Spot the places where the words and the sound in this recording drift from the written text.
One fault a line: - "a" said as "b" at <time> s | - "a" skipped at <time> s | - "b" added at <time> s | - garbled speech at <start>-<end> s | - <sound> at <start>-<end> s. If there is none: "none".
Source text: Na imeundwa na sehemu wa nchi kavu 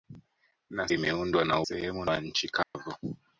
- dropout at 2.6-2.7 s